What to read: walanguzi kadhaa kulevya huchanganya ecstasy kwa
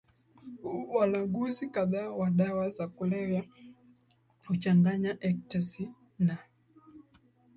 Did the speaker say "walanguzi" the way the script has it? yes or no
yes